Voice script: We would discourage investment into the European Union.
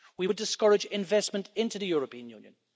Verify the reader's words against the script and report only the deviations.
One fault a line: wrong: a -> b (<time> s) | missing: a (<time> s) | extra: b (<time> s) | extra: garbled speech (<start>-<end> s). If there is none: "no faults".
no faults